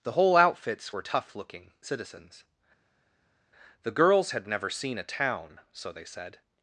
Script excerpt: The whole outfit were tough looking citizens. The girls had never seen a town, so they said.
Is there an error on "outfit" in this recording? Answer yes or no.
yes